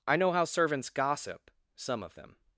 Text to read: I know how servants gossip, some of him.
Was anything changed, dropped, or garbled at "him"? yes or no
yes